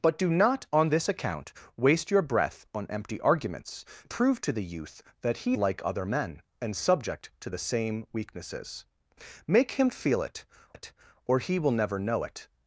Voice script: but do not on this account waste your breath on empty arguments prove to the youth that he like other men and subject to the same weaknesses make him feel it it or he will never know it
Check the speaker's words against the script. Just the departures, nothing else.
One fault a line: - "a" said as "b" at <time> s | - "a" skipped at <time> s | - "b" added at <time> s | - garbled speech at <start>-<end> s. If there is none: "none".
none